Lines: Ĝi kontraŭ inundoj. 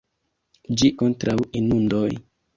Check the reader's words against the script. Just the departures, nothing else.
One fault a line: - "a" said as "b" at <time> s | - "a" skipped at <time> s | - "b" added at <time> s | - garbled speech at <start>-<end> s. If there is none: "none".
none